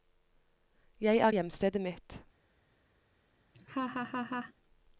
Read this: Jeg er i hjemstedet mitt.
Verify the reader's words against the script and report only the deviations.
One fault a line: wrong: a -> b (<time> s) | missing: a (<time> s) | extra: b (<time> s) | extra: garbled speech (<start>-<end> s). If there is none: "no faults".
no faults